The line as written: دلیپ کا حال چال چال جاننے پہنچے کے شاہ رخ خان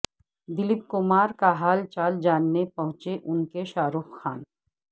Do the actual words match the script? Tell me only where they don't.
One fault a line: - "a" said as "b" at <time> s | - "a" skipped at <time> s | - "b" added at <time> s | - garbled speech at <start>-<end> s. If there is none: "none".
- "کمار" added at 0.9 s
- "چال" skipped at 2.2 s
- "ان" added at 3.2 s